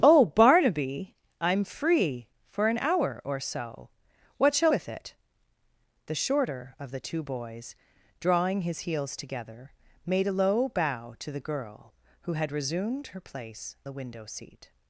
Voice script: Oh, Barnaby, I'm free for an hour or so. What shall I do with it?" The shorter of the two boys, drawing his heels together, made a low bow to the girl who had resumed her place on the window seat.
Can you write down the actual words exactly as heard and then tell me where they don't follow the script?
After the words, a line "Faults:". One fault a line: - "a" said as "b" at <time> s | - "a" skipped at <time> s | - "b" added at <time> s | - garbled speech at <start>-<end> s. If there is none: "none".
Oh, Barnaby, I'm free for an hour or so. What shall with it?" The shorter of the two boys, drawing his heels together, made a low bow to the girl who had resumed her place the window seat.
Faults:
- "I do" skipped at 4.7 s
- "on" skipped at 13.8 s